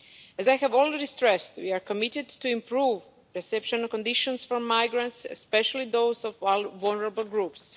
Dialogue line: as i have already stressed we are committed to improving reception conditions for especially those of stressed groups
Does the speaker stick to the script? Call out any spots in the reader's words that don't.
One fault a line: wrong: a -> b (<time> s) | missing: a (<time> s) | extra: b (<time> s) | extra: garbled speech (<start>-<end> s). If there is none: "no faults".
extra: migrants (4.6 s)
wrong: stressed -> vulnerable (6.4 s)